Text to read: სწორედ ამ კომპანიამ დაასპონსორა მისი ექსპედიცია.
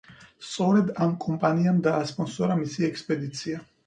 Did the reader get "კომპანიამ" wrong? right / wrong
right